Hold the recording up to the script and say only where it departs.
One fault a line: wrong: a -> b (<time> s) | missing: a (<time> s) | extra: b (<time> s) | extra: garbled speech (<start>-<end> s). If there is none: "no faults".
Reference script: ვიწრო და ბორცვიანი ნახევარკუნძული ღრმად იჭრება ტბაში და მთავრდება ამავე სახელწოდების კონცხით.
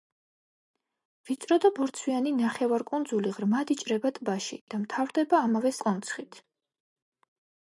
missing: სახელწოდების (5.8 s)